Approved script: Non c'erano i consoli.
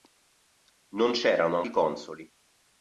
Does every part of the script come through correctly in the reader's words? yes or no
yes